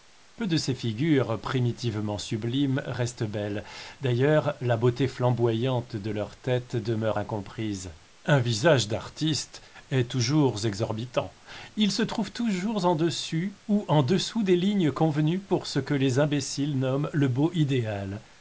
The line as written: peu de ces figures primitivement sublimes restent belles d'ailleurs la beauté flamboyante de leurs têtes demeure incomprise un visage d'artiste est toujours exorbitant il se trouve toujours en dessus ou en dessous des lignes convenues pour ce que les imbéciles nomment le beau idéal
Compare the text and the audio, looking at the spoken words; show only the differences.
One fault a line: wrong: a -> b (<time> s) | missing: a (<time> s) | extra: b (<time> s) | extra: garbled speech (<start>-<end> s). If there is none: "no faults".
no faults